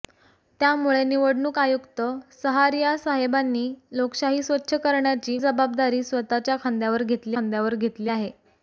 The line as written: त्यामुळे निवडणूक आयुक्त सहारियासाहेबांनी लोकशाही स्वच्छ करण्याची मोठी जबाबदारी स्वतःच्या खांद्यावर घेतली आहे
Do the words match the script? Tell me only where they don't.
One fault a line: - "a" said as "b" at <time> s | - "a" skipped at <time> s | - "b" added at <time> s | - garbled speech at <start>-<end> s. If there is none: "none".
- "मोठी" skipped at 5.4 s
- "खांद्यावर घेतली" added at 7.3 s